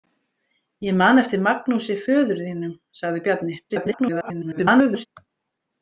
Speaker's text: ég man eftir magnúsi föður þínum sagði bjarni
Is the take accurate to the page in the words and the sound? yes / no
no